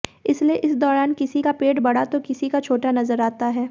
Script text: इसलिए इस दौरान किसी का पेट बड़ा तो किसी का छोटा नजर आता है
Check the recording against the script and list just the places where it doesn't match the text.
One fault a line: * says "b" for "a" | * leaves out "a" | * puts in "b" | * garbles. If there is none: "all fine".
all fine